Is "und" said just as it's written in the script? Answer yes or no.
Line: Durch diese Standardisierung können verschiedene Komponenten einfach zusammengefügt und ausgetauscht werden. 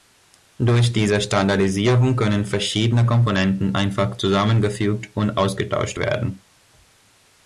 yes